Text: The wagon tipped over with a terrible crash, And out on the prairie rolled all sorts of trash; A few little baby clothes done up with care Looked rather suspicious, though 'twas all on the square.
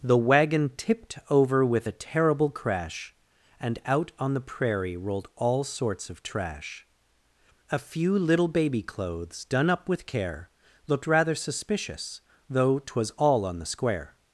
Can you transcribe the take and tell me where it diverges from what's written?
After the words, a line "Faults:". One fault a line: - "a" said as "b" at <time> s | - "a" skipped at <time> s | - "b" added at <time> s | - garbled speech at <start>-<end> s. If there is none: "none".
The wagon tipped over with a terrible crash, And out on the prairie rolled all sorts of trash; A few little baby clothes done up with care Looked rather suspicious, though 'twas all on the square.
Faults:
none